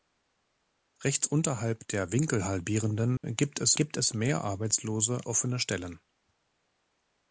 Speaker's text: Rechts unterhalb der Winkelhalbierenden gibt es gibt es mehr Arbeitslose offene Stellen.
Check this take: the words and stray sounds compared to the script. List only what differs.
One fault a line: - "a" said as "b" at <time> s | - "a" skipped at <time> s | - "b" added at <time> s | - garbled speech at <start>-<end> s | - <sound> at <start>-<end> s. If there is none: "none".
- dropout at 3.2-3.2 s